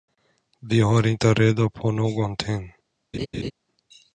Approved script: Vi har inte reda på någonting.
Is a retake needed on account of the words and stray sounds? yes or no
yes